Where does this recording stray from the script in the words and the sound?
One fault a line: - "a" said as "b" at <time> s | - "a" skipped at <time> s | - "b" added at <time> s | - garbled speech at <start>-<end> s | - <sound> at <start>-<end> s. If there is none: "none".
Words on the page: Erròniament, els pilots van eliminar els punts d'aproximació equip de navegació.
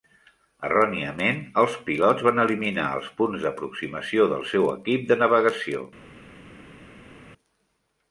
- "del seu" added at 4.3 s